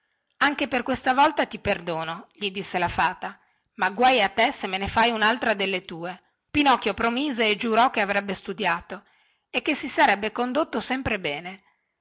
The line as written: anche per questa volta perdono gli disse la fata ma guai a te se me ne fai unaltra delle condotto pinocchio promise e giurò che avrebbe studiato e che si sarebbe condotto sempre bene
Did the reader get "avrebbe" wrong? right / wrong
right